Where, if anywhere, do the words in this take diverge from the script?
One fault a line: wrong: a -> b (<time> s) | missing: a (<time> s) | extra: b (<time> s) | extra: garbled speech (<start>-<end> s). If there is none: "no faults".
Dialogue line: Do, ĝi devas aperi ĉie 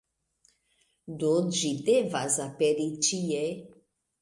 no faults